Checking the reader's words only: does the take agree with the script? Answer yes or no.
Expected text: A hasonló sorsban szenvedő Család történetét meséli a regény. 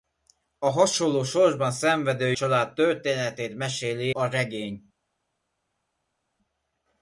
yes